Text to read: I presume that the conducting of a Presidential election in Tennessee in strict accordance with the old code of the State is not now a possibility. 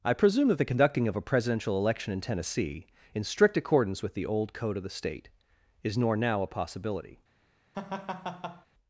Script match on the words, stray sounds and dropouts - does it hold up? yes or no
no